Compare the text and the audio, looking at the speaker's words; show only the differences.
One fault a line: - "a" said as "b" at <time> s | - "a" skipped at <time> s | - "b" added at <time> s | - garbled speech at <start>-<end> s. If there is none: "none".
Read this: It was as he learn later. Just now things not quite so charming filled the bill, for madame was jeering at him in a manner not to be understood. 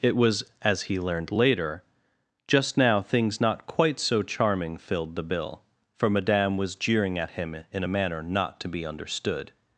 - "learn" said as "learned" at 1.0 s